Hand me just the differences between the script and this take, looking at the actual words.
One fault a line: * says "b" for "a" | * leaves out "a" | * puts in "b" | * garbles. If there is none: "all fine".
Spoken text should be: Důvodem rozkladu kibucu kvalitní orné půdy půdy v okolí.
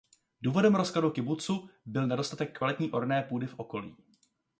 * puts in "byl nedostatek"
* leaves out "půdy"